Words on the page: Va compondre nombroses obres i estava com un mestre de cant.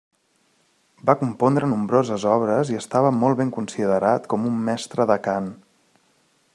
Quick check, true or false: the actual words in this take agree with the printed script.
false